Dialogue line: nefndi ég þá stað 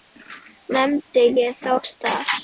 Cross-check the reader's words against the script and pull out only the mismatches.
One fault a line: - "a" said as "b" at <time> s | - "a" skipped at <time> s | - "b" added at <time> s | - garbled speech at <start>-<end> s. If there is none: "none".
none